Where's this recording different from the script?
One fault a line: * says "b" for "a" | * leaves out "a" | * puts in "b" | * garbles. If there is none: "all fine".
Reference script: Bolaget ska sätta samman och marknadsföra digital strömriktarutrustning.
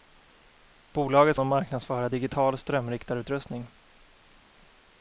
* leaves out "ska sätta samman"